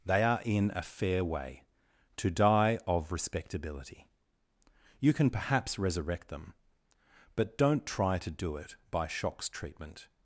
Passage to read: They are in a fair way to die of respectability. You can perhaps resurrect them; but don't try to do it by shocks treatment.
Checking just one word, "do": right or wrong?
right